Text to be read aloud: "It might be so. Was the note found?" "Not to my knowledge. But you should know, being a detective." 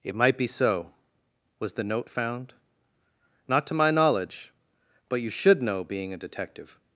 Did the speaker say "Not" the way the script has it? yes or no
yes